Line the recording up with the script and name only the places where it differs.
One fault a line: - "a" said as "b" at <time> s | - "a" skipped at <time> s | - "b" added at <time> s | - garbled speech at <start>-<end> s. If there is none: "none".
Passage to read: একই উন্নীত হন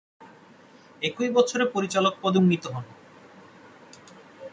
- "বছরে পরিচালক পদে" added at 1.3 s